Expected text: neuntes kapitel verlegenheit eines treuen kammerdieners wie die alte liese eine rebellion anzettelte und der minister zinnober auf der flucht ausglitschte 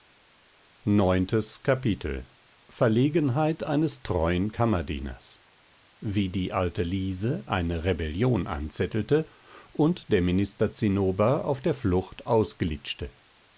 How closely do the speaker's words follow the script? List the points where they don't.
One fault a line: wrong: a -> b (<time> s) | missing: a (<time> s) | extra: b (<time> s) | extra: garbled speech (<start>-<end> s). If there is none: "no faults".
no faults